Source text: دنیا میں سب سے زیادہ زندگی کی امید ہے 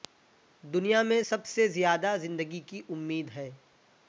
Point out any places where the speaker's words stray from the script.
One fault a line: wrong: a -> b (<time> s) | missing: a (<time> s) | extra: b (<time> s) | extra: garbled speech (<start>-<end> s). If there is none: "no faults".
no faults